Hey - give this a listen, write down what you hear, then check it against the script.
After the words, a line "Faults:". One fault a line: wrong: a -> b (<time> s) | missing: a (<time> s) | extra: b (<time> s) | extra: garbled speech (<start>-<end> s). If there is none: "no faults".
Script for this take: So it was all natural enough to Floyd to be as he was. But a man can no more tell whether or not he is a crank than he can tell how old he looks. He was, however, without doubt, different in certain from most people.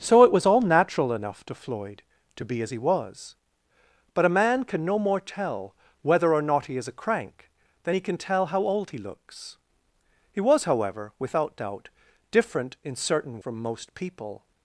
So it was all natural enough to Floyd to be as he was. But a man can no more tell whether or not he is a crank than he can tell how old he looks. He was, however, without doubt, different in certain from most people.
Faults:
no faults